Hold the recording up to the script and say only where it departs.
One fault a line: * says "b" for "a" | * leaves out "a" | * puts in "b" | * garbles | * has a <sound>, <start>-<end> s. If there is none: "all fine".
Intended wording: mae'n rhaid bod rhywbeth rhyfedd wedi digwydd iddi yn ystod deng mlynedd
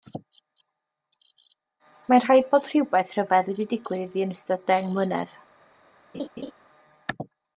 * has a laugh, 6.1-6.5 s